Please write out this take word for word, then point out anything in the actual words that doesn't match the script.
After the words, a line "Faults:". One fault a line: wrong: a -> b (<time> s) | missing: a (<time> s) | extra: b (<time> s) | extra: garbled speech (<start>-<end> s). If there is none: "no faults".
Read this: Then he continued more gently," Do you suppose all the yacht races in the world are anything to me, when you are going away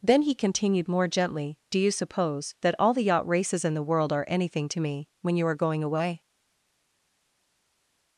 Then he continued more gently," Do you suppose that all the yacht races in the world are anything to me, when you are going away
Faults:
extra: that (2.6 s)